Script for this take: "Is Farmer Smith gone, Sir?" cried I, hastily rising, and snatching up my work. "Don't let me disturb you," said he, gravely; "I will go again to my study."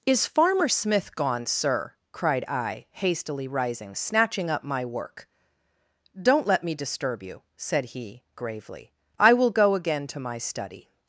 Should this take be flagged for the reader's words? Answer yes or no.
yes